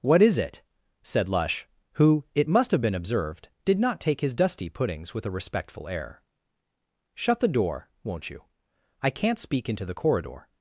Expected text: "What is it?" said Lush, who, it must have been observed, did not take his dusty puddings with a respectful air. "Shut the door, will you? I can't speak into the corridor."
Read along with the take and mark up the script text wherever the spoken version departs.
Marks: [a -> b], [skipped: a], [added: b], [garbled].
"What is it?" said Lush, who, it must have been observed, did not take his dusty puddings with a respectful air. "Shut the door, [will -> won't] you? I can't speak into the corridor."